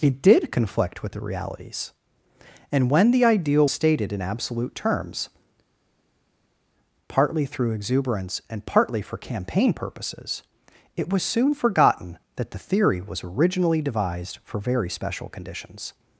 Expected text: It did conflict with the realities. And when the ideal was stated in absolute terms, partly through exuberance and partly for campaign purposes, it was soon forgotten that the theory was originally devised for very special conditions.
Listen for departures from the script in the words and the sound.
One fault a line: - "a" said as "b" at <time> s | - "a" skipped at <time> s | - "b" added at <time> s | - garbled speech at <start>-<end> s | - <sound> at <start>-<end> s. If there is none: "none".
- "was" skipped at 3.7 s